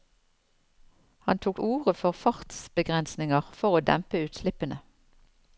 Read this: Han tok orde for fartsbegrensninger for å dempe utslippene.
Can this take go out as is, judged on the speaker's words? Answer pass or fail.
pass